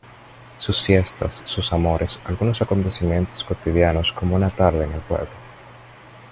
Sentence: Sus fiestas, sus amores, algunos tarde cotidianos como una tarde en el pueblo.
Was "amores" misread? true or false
false